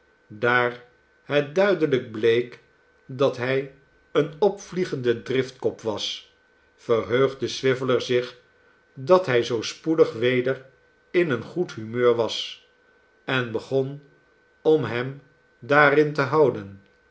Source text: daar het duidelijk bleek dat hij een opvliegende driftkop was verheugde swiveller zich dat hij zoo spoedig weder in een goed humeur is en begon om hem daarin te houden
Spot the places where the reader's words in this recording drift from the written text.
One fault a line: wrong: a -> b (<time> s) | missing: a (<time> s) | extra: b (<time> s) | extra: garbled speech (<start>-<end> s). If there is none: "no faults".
wrong: is -> was (12.2 s)